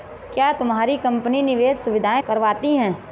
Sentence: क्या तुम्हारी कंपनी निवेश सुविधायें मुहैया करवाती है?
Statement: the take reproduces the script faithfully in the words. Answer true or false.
false